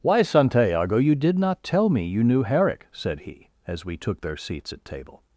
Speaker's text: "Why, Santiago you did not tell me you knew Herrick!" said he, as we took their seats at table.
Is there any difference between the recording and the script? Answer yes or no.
no